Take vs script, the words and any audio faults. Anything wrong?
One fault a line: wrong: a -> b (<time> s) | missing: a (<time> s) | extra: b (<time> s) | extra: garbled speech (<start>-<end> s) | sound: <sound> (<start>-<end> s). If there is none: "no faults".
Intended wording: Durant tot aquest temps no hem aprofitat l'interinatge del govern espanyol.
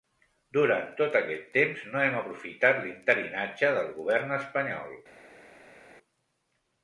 no faults